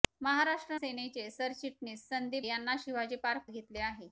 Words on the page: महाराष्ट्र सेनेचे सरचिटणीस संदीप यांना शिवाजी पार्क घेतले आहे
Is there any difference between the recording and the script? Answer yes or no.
no